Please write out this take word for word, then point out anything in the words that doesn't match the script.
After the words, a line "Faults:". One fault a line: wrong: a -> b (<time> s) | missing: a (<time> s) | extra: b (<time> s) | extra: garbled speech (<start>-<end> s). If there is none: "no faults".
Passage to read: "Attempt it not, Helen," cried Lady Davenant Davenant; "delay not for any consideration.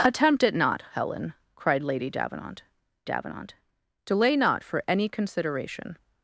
"Attempt it not, Helen," cried Lady Davenant Davenant; "delay not for any consideration.
Faults:
no faults